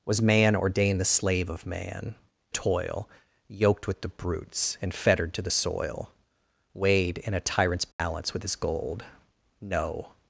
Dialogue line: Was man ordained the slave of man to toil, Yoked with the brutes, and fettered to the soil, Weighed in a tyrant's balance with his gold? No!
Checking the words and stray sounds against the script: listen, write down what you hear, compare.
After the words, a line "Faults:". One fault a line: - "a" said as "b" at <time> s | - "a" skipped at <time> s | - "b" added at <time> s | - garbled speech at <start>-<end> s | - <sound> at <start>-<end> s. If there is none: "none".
Was man ordained the slave of man toil, Yoked with the brutes, and fettered to the soil, Weighed in a tyrant's balance with his gold? No!
Faults:
- "to" skipped at 2.1 s
- dropout at 7.9-8.0 s